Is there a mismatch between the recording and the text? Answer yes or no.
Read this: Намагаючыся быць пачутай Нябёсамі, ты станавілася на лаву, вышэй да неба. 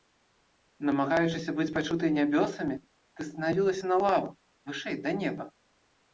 no